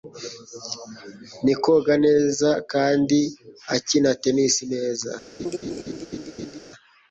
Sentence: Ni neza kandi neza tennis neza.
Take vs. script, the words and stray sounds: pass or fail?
fail